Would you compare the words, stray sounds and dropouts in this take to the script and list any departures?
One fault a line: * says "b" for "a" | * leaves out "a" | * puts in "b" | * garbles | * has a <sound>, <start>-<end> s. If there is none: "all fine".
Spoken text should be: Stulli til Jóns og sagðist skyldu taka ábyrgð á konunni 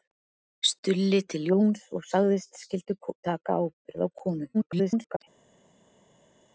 * garbles